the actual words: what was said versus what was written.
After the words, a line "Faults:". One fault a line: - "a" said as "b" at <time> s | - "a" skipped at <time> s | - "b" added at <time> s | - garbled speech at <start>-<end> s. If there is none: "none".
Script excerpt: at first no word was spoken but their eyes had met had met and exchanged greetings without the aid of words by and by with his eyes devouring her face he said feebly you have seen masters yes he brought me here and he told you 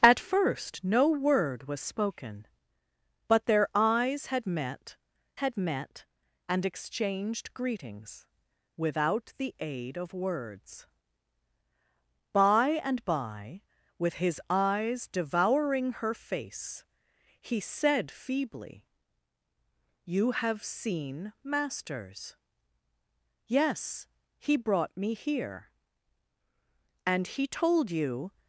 at first no word was spoken but their eyes had met had met and exchanged greetings without the aid of words by and by with his eyes devouring her face he said feebly you have seen masters yes he brought me here and he told you
Faults:
none